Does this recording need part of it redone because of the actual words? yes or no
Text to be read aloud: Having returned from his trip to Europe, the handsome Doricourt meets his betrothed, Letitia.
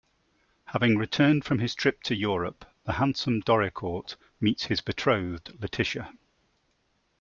no